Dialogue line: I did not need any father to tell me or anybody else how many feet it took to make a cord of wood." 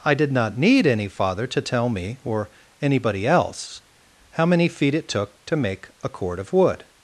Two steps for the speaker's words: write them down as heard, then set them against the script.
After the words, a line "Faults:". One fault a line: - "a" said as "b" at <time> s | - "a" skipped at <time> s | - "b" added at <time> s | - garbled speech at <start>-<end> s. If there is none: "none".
I did not need any father to tell me or anybody else how many feet it took to make a cord of wood."
Faults:
none